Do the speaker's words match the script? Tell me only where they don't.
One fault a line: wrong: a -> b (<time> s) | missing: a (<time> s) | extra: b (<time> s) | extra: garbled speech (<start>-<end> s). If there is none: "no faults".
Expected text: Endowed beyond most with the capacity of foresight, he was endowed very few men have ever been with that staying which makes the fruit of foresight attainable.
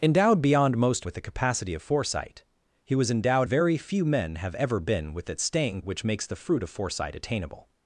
no faults